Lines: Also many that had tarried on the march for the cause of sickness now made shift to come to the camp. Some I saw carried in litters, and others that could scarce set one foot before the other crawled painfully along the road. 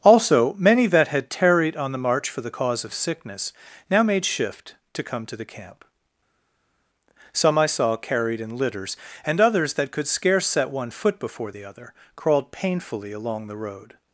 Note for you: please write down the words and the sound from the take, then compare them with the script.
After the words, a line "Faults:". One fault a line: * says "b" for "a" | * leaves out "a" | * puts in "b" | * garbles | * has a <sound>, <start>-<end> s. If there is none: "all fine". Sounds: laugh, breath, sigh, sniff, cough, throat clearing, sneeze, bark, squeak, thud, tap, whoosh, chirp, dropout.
Also many that had tarried on the march for the cause of sickness now made shift to come to the camp. Some I saw carried in litters, and others that could scarce set one foot before the other crawled painfully along the road.
Faults:
all fine